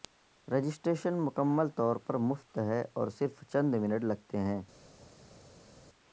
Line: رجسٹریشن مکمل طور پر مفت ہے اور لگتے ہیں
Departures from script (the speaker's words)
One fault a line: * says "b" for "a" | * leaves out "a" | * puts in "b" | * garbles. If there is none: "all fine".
* puts in "صرف چند منٹ"